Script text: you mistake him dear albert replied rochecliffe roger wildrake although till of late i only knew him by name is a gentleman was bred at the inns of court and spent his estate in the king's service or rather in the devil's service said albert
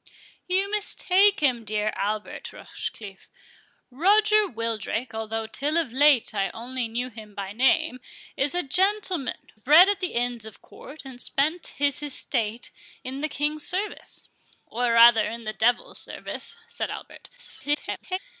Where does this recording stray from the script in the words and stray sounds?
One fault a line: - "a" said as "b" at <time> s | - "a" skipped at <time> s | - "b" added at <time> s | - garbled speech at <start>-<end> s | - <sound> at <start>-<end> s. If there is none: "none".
- "replied" skipped at 2.5 s
- "was" skipped at 9.5 s
- garbled speech at 17.4-18.2 s